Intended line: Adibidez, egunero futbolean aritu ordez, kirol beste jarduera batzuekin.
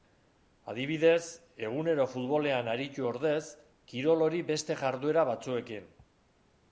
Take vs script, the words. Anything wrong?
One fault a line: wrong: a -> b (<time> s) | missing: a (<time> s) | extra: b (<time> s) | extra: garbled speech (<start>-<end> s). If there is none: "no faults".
extra: hori (4.3 s)